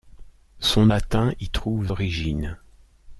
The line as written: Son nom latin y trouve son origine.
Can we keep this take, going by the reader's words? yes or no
no